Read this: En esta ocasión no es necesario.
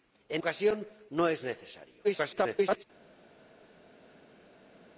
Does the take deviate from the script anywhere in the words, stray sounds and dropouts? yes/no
yes